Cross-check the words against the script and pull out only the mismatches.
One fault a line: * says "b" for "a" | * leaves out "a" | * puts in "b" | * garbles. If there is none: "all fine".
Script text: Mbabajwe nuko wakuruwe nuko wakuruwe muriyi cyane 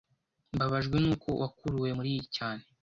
* leaves out "nuko wakuruwe"